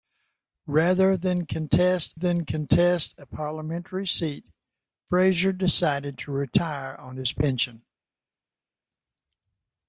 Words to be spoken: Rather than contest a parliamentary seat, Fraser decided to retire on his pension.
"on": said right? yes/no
yes